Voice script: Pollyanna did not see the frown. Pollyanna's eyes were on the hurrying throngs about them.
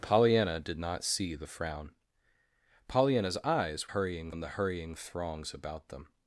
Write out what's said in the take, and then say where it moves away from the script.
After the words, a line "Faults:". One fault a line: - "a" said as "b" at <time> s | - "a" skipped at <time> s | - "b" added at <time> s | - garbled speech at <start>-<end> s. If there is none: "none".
Pollyanna did not see the frown. Pollyanna's eyes hurrying on the hurrying throngs about them.
Faults:
- "were" said as "hurrying" at 3.9 s